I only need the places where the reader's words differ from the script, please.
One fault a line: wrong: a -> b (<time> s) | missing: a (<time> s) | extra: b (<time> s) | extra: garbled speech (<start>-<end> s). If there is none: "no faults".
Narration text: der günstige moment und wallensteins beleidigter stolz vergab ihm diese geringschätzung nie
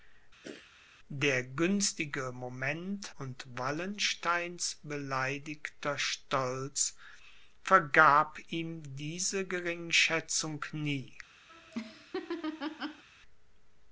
no faults